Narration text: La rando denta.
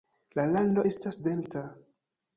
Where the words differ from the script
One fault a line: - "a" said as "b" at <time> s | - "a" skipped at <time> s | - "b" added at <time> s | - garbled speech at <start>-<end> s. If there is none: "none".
- "estas" added at 0.9 s